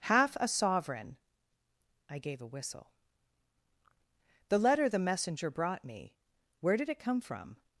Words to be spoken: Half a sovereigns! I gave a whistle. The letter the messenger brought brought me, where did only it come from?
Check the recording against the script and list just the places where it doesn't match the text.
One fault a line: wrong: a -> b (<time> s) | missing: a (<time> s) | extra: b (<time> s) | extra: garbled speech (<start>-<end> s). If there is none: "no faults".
wrong: sovereigns -> sovereign (0.5 s)
missing: brought (5.8 s)
missing: only (6.9 s)